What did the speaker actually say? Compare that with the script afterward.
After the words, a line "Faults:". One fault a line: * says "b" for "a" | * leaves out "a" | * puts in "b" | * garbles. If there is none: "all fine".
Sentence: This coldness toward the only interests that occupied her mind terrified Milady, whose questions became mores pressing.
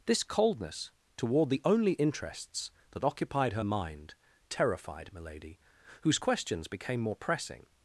This coldness toward the only interests that occupied her mind terrified Milady, whose questions became more pressing.
Faults:
* says "more" for "mores"